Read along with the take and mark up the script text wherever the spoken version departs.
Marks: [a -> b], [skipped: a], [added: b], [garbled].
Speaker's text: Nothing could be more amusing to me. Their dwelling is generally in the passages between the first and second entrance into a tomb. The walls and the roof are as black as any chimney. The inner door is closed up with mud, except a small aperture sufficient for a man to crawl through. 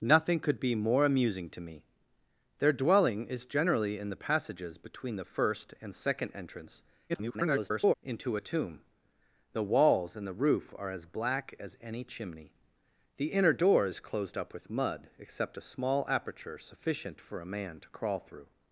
Nothing could be more amusing to me. Their dwelling is generally in the passages between the first and second entrance [garbled] into a tomb. The walls and the roof are as black as any chimney. The inner door is closed up with mud, except a small aperture sufficient for a man to crawl through.